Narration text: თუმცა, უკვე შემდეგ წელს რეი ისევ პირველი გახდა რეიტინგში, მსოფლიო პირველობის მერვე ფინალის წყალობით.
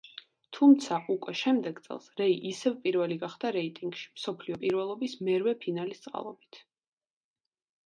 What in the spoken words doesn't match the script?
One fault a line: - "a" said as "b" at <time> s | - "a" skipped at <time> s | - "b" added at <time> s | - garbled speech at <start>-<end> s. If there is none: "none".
none